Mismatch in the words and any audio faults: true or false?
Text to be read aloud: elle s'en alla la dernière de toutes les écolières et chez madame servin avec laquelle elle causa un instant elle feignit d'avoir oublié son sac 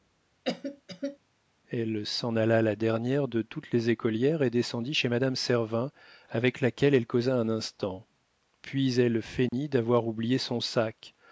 true